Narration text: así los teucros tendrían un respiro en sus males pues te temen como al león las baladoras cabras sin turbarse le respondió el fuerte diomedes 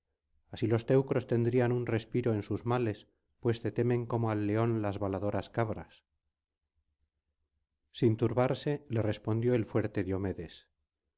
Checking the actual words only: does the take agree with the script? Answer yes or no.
yes